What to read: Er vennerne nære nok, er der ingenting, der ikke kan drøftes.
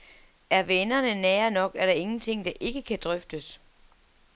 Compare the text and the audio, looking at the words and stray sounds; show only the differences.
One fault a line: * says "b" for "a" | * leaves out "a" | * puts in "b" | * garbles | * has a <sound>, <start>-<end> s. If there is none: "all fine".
all fine